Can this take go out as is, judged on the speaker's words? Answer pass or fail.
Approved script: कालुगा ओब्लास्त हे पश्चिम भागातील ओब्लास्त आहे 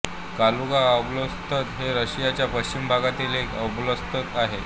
fail